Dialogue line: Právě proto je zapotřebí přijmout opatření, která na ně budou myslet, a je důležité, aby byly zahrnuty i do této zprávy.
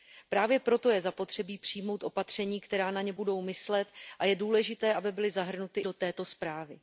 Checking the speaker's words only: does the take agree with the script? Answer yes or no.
no